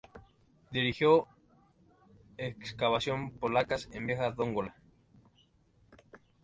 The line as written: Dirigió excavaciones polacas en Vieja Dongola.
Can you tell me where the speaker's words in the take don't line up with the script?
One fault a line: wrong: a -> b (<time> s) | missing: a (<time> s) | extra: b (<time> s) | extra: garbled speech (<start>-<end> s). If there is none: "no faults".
no faults